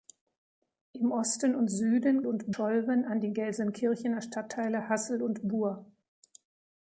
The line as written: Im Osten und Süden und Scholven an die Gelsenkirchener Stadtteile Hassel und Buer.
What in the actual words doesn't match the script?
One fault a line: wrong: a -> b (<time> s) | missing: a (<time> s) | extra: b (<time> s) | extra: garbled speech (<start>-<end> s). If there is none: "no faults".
no faults